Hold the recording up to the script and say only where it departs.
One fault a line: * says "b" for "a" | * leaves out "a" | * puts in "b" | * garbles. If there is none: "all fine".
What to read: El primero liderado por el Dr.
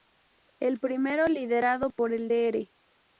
all fine